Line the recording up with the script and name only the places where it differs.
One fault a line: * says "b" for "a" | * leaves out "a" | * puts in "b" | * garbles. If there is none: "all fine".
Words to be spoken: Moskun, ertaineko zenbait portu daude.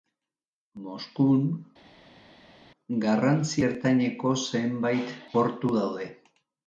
* puts in "garrantzi"